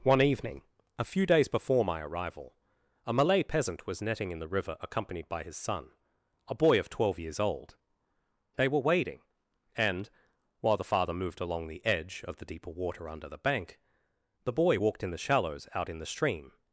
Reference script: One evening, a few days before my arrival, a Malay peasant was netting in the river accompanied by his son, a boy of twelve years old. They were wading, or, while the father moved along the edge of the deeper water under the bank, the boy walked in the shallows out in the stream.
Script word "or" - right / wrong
wrong